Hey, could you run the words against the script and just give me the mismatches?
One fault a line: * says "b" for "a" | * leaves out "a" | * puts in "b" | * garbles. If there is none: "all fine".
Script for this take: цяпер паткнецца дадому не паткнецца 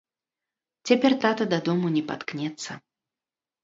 * says "тата" for "паткнецца"